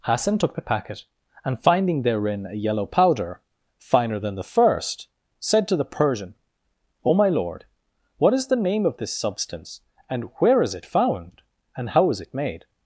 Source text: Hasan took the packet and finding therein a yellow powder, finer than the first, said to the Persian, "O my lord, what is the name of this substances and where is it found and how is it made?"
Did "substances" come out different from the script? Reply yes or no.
yes